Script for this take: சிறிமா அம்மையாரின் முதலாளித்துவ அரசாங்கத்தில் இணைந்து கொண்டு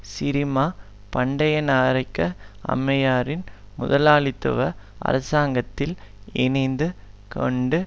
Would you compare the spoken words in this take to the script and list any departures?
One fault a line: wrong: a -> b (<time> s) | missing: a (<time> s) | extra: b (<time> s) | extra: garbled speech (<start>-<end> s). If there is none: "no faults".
extra: பண்டயநாயக்க (1.1 s)